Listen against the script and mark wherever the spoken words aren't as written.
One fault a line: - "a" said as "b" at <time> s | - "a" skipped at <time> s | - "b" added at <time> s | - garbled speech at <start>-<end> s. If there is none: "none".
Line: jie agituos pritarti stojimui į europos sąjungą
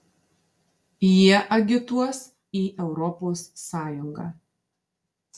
- "pritarti stojimui" skipped at 2.2 s